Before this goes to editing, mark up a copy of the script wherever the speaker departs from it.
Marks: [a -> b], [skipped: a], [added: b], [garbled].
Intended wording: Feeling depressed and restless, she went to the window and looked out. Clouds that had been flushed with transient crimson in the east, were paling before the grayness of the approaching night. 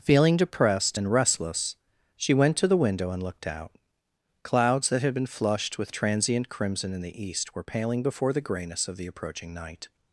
Feeling depressed and restless, she went to the window and looked out. Clouds that had been flushed with transient crimson in the east, were paling before the grayness of the approaching night.